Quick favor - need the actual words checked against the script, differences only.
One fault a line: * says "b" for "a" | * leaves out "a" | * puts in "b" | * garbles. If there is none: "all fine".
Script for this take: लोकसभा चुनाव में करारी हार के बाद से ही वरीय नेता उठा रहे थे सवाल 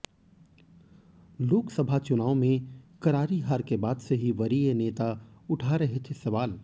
all fine